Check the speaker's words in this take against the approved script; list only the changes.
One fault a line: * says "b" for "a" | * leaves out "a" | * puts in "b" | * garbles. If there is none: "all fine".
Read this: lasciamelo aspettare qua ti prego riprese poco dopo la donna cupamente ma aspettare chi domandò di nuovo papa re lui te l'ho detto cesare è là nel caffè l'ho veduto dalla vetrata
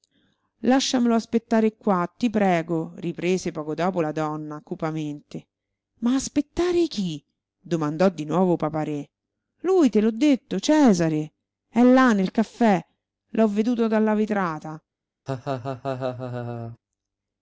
all fine